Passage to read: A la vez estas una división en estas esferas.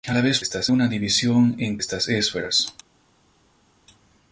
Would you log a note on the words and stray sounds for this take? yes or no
no